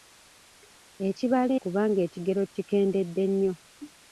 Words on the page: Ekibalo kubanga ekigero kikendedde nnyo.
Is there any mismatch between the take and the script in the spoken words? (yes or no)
no